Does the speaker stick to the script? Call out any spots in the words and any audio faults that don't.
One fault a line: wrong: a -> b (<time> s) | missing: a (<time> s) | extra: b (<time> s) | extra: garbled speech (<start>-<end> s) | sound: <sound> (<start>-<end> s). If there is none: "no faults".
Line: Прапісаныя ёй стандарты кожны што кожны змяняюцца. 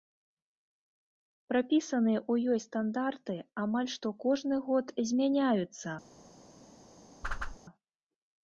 extra: ў (2.3 s)
wrong: кожны -> амаль (3.6 s)
extra: год (4.7 s)
sound: whoosh (7.2-7.6 s)